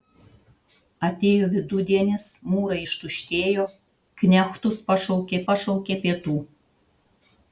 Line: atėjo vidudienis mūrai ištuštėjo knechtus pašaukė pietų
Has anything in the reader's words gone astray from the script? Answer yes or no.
yes